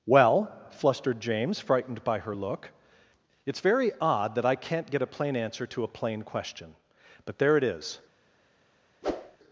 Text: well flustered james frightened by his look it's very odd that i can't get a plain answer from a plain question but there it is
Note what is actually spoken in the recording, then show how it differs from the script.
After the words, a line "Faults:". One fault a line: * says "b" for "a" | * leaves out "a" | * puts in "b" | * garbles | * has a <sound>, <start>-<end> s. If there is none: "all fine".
well flustered james frightened by her look it's very odd that i can't get a plain answer to a plain question but there it is
Faults:
* says "her" for "his"
* says "to" for "from"
* has a whoosh, 9.0-9.4 s